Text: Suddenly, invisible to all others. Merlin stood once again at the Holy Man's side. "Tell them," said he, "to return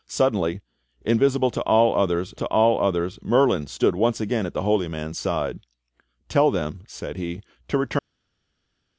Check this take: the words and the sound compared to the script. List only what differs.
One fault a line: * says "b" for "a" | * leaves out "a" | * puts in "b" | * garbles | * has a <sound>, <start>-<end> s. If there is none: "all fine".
* puts in "to all others"